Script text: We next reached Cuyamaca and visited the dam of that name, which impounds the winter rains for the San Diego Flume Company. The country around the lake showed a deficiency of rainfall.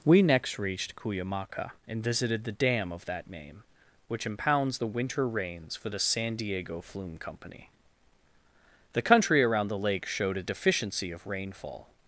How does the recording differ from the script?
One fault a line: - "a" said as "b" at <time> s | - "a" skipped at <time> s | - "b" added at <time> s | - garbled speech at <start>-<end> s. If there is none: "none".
none